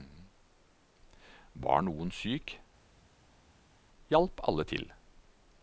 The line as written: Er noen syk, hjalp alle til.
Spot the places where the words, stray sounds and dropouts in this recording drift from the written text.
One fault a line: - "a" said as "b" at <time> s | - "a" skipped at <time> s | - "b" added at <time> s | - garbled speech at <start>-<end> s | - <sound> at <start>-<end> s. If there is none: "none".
- "Er" said as "Var" at 1.6 s